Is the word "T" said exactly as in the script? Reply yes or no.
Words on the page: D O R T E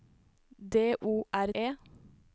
no